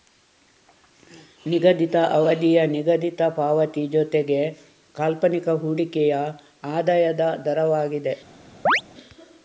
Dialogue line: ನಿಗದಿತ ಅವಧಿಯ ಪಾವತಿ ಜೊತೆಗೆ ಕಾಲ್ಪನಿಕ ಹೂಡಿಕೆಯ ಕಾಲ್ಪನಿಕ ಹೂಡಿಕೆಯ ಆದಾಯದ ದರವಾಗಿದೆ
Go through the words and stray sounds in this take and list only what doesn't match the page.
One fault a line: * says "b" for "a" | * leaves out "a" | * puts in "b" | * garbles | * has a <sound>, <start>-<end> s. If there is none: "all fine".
* puts in "ನಿಗದಿತ"
* leaves out "ಕಾಲ್ಪನಿಕ ಹೂಡಿಕೆಯ"
* has a chirp, 8.7-8.8 s